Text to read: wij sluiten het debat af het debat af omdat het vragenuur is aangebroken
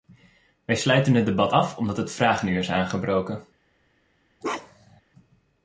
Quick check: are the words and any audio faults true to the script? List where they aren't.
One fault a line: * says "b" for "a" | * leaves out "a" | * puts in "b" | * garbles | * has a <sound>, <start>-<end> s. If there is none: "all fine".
* leaves out "het debat af"
* has a bark, 4.4-5.0 s